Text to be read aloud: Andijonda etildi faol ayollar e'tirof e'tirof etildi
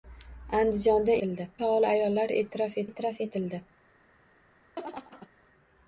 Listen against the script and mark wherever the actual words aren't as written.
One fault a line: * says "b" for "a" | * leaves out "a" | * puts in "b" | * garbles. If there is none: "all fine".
all fine